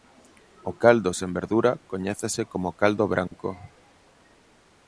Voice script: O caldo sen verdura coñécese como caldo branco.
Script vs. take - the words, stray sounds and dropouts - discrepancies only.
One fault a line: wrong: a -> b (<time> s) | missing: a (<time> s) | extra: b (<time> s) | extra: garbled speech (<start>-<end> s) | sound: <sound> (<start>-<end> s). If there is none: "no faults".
sound: dropout (3.3-3.3 s)